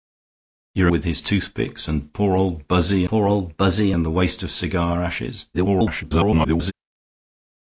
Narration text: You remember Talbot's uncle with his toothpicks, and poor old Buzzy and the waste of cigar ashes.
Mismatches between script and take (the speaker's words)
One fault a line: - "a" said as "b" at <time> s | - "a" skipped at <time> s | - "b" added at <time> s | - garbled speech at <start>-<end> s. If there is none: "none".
- "remember Talbot's uncle" skipped at 0.9 s
- "poor old Buzzy" added at 3.1 s
- garbled speech at 5.5-6.7 s